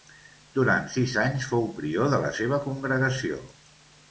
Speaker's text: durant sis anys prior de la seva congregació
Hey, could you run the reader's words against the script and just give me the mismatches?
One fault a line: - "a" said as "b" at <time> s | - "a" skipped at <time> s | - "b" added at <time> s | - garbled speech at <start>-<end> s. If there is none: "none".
- "fou" added at 1.5 s